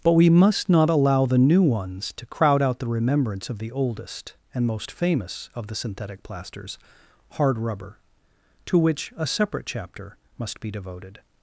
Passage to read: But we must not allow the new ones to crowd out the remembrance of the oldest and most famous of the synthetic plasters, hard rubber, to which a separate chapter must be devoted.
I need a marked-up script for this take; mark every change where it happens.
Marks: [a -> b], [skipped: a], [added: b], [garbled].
But we must not allow the new ones to crowd out the remembrance of the oldest and most famous of the synthetic plasters, hard rubber, to which a separate chapter must be devoted.